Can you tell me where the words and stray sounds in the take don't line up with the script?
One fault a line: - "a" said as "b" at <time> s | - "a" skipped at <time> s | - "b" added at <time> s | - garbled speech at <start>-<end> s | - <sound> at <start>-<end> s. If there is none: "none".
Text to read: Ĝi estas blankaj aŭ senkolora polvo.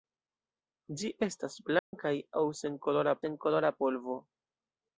- dropout at 1.8-1.9 s
- "senkolora" added at 3.2 s